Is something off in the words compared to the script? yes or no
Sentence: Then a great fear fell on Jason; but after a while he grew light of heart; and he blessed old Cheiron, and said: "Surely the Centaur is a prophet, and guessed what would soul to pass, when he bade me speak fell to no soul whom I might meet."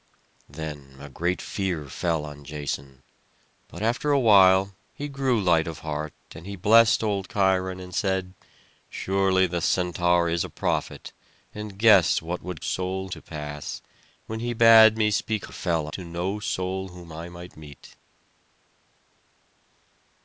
no